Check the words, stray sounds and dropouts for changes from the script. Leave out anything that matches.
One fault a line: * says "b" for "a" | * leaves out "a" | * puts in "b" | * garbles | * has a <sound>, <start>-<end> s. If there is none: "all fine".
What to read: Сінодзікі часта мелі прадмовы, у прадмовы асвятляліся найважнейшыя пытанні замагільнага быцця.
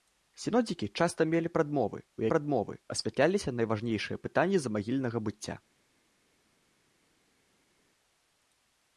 all fine